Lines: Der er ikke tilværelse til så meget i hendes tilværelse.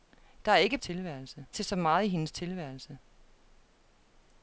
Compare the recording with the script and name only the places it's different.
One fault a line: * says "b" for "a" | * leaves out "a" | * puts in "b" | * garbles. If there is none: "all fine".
all fine